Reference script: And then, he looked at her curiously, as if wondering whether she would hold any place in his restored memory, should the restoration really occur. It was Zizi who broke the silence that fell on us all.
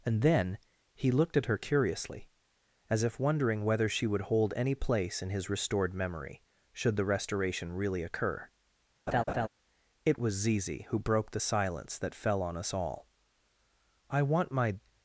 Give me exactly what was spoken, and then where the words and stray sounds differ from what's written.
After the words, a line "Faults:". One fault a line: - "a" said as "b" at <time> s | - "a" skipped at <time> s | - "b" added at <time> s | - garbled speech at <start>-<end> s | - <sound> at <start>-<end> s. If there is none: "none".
And then, he looked at her curiously, as if wondering whether she would hold any place in his restored memory, should the restoration really occur. It was Zizi who broke the silence that fell on us all. "I want my
Faults:
- laugh at 9.1-9.5 s
- "I want my" added at 14.1 s